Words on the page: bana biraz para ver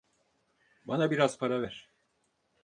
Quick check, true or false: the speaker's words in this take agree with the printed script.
true